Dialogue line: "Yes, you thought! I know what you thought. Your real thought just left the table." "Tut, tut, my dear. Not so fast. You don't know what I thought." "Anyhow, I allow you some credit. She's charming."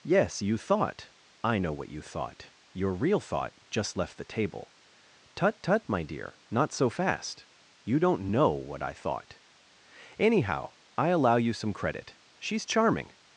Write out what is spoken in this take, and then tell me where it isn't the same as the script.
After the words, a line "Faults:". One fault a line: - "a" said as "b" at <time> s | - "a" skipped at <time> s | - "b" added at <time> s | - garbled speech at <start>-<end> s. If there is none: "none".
"Yes, you thought! I know what you thought. Your real thought just left the table." "Tut, tut, my dear. Not so fast. You don't know what I thought." "Anyhow, I allow you some credit. She's charming."
Faults:
none